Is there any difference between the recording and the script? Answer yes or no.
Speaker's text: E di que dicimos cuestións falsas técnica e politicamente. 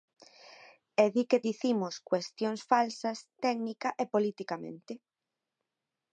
no